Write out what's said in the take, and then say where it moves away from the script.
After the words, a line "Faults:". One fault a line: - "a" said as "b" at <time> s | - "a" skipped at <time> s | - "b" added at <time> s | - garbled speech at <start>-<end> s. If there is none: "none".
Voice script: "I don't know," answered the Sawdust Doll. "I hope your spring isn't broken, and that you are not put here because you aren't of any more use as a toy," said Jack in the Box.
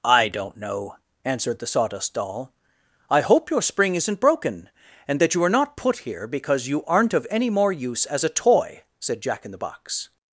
"I don't know," answered the Sawdust Doll. "I hope your spring isn't broken, and that you are not put here because you aren't of any more use as a toy," said Jack in the Box.
Faults:
none